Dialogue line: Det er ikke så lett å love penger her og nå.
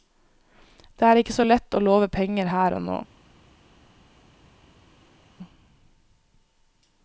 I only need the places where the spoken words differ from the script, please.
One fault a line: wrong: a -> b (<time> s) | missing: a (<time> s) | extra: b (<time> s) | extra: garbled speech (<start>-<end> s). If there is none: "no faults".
no faults